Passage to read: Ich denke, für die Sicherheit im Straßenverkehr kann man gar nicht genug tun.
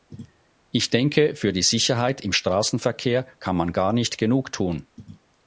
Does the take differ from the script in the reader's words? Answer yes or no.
no